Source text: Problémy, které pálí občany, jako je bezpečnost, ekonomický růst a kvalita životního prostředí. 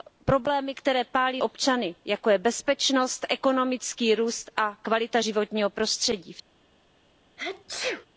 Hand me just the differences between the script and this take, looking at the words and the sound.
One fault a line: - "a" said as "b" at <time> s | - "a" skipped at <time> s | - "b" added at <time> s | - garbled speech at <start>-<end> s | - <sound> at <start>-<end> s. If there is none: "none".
- sneeze at 7.4-8.1 s